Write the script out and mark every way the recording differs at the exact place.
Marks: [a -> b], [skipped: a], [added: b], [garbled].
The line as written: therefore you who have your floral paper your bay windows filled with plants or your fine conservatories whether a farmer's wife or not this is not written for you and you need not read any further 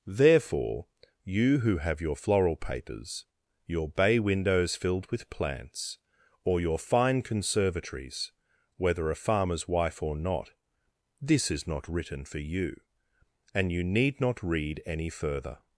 therefore you who have your floral [paper -> papers] your bay windows filled with plants or your fine conservatories whether a farmer's wife or not this is not written for you and you need not read any further